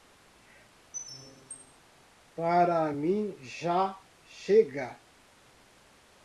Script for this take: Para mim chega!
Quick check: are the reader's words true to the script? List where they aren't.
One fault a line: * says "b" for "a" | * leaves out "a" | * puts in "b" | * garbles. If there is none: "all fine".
* puts in "já"